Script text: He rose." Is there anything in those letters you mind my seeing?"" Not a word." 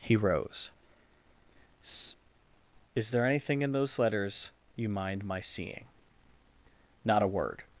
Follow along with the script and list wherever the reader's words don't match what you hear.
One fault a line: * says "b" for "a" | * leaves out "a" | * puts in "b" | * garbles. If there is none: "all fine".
all fine